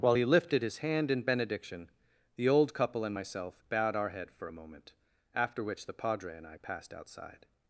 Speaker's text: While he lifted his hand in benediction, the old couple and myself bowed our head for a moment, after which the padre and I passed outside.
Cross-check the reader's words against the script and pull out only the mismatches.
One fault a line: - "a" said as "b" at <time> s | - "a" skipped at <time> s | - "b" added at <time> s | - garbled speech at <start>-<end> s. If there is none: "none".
none